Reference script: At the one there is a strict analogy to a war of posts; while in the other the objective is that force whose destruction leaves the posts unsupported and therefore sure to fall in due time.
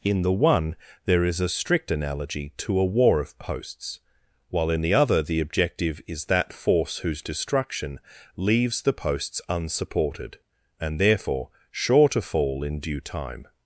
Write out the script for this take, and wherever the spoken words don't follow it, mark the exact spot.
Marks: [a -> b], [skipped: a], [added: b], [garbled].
[At -> In] the one there is a strict analogy to a war of posts; while in the other the objective is that force whose destruction leaves the posts unsupported and therefore sure to fall in due time.